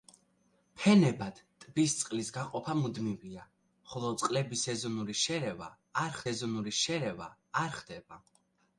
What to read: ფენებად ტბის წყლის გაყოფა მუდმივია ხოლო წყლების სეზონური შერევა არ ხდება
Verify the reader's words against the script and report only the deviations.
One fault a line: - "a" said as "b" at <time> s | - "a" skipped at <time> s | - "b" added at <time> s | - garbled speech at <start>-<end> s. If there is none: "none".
- "სეზონური შერევა არ" added at 6.3 s